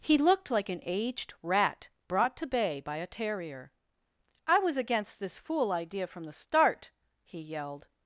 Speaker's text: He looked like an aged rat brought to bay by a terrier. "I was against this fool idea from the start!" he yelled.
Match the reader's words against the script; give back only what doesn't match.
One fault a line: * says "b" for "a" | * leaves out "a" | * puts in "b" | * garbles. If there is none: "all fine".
all fine